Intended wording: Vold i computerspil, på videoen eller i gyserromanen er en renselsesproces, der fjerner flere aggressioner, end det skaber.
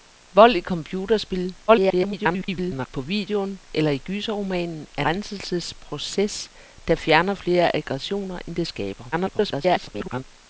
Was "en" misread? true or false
true